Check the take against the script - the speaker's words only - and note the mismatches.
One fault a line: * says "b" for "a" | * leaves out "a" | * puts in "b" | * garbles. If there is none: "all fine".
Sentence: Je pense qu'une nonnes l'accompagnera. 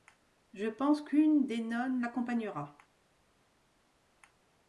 * puts in "des"